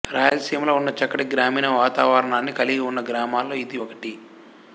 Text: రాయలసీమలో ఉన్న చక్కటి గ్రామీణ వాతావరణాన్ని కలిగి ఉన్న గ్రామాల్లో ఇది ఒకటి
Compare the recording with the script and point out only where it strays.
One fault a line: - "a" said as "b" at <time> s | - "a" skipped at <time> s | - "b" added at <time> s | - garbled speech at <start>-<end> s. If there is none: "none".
none